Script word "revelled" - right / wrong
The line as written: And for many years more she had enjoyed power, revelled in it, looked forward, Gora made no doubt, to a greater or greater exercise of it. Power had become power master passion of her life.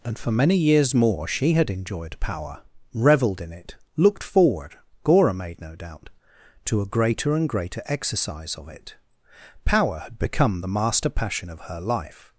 right